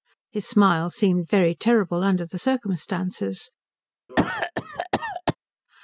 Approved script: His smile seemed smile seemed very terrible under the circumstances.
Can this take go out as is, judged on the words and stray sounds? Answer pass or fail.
fail